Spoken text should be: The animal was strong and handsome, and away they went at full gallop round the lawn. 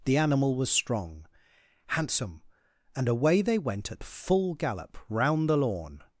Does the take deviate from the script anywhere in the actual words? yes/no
yes